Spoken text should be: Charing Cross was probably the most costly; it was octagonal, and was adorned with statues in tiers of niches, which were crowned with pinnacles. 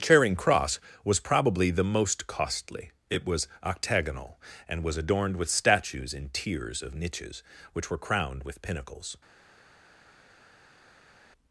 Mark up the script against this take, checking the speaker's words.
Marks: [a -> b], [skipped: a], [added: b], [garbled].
Charing Cross was probably the most costly; it was octagonal, and was adorned with statues in tiers of niches, which were crowned with pinnacles.